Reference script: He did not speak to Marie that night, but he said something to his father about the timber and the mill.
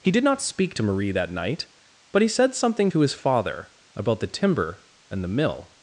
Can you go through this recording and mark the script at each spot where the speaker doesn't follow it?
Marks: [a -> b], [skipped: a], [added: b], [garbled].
He did not speak to Marie that night, but he said something to his father about the timber and the mill.